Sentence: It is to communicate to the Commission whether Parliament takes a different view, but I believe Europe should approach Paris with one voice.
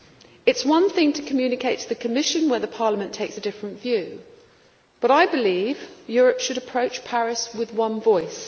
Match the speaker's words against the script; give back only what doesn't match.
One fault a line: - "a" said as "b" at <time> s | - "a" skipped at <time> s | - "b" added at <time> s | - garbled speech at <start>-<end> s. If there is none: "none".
- "one thing" added at 0.7 s